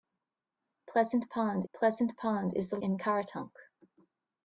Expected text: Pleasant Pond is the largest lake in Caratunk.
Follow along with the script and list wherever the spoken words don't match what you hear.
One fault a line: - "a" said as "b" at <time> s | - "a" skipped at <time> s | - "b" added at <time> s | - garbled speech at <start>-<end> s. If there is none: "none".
- "pleasant Pond" added at 1.7 s
- "largest lake" skipped at 2.8 s